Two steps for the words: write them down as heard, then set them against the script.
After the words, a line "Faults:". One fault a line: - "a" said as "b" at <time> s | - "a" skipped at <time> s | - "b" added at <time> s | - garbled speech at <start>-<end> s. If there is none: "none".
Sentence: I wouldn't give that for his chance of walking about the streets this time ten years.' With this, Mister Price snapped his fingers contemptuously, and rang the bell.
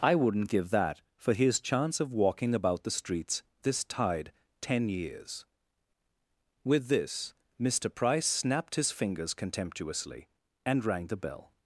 I wouldn't give that for his chance of walking about the streets this tide ten years.' With this, Mister Price snapped his fingers contemptuously, and rang the bell.
Faults:
- "time" said as "tide" at 3.8 s